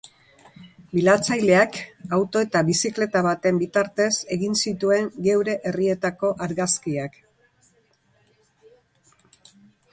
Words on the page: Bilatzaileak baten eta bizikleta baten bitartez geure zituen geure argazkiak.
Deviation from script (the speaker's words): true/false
true